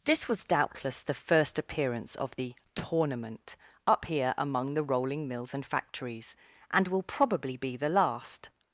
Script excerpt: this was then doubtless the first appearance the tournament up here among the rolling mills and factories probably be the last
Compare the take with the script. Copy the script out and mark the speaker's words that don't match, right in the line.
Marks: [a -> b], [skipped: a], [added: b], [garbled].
this was [skipped: then] doubtless the first appearance [added: of] the tournament up here among the rolling mills and factories [added: and will] probably be the last